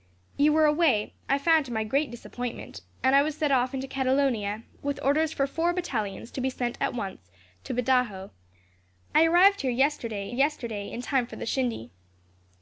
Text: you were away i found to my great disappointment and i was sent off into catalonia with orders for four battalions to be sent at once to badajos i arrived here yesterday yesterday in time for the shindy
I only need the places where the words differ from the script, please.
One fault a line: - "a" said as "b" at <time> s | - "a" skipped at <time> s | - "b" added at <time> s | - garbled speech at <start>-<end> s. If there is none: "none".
none